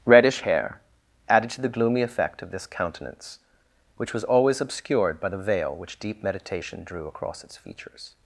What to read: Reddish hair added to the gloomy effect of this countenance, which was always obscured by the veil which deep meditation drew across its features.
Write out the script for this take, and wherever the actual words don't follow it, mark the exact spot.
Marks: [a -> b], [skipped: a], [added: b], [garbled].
Reddish hair added to the gloomy effect of this countenance, which was always obscured by the veil which deep meditation drew across its features.